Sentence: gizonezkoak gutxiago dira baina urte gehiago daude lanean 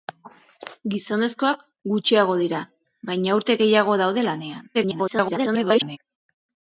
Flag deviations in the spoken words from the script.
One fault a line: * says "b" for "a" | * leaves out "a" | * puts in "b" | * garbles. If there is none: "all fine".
* garbles